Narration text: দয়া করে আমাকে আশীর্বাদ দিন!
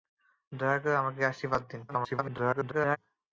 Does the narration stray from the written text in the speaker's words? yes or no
yes